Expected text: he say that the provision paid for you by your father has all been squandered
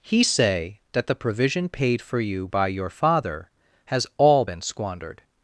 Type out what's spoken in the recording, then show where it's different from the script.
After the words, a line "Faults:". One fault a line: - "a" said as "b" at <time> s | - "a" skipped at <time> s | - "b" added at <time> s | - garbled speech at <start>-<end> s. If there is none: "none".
he say that the provision paid for you by your father has all been squandered
Faults:
none